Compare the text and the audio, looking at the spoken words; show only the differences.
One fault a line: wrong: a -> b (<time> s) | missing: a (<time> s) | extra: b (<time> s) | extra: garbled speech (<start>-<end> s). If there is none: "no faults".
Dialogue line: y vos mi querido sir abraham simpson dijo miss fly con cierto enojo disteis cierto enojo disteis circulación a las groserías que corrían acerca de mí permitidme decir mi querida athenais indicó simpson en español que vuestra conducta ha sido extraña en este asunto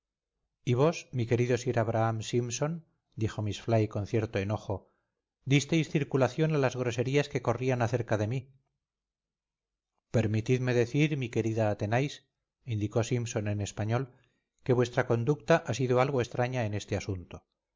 missing: cierto enojo disteis (5.9 s)
extra: algo (16.0 s)